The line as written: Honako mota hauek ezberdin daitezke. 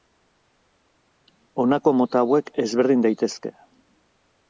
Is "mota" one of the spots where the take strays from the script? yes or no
no